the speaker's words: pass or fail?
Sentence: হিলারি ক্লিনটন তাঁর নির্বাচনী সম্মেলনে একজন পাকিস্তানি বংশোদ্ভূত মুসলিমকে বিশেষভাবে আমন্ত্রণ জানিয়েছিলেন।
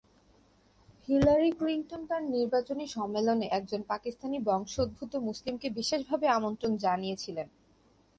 pass